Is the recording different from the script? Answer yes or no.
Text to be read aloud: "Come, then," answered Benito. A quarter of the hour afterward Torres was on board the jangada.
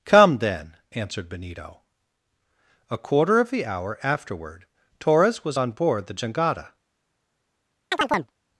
no